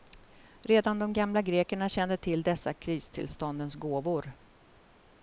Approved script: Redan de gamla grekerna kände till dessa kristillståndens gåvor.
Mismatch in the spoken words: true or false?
false